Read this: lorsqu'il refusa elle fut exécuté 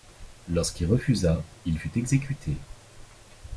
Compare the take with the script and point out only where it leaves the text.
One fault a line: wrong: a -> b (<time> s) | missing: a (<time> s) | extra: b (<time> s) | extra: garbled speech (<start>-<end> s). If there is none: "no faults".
wrong: elle -> il (1.6 s)